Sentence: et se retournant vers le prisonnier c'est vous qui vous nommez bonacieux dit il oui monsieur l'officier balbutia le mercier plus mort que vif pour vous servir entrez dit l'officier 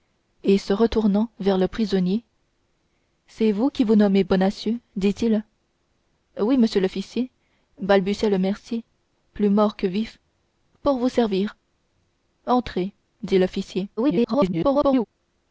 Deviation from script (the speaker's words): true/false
true